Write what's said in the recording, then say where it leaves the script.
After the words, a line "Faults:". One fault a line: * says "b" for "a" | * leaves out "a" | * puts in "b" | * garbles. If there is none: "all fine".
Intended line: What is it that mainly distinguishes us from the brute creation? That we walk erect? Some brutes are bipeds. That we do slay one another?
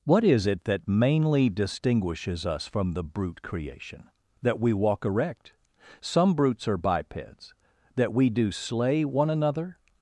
What is it that mainly distinguishes us from the brute creation? That we walk erect? Some brutes are bipeds. That we do slay one another?
Faults:
all fine